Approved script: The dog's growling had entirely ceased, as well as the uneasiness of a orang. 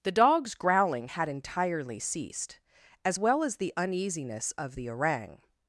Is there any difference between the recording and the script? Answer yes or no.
yes